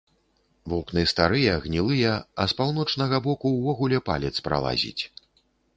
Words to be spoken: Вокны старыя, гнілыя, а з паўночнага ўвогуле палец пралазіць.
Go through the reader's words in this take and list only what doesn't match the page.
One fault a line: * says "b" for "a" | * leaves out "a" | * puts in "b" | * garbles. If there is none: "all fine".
* puts in "боку"